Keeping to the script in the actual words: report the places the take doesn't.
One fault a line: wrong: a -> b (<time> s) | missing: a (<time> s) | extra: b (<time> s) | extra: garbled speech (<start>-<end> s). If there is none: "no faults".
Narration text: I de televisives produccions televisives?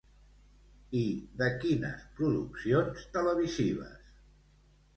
wrong: televisives -> quines (1.6 s)